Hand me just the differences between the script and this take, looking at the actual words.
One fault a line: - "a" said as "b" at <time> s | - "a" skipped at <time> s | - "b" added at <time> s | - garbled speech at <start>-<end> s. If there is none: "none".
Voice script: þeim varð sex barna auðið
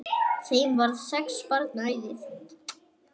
none